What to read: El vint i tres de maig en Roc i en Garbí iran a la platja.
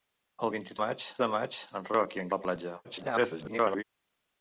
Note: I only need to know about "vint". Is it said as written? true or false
true